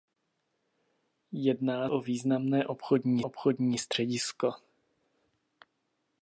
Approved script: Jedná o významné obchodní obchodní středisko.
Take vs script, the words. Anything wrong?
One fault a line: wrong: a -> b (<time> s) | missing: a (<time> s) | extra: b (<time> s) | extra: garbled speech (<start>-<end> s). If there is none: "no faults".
no faults